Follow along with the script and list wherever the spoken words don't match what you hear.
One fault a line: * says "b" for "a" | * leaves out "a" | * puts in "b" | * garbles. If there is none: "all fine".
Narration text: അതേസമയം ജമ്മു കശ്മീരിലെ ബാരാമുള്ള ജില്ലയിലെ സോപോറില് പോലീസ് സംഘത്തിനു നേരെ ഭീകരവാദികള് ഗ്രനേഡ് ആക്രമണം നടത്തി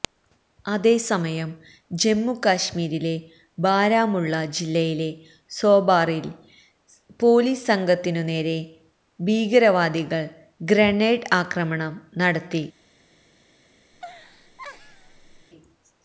all fine